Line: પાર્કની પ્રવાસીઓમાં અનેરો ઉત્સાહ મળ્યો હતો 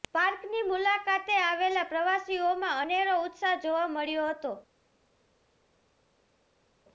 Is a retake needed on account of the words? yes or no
yes